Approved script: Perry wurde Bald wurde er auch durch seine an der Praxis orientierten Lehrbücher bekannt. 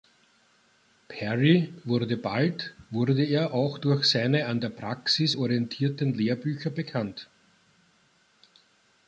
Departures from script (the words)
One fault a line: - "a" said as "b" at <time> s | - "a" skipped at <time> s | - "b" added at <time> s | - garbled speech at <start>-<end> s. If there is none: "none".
none